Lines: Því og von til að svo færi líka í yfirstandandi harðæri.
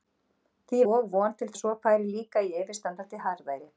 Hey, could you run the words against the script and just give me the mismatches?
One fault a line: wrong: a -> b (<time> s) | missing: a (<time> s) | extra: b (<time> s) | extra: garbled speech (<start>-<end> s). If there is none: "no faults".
no faults